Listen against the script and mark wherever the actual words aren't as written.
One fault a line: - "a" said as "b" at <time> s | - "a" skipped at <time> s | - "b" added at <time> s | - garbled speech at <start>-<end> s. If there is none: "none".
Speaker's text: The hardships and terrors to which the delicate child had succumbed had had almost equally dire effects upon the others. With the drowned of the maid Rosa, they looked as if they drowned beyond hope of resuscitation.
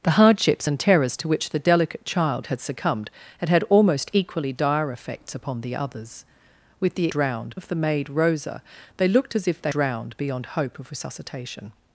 none